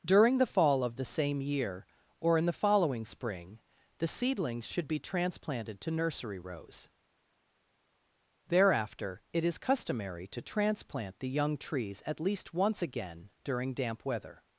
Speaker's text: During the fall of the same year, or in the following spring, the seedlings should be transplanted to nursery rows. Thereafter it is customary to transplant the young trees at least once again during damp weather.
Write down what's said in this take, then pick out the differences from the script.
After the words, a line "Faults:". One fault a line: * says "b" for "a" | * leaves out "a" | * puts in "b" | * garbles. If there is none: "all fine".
During the fall of the same year, or in the following spring, the seedlings should be transplanted to nursery rows. Thereafter it is customary to transplant the young trees at least once again during damp weather.
Faults:
all fine